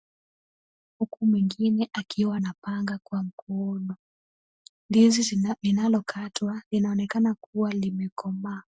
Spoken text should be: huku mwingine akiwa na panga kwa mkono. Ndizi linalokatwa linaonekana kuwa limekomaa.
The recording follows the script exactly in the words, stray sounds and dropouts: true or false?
true